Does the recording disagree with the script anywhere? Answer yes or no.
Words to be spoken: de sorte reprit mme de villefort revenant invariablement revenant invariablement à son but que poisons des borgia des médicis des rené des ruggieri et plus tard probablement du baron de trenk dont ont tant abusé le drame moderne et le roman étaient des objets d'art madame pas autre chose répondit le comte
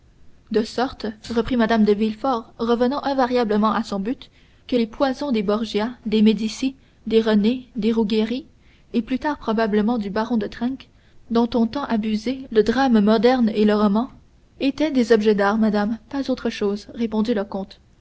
yes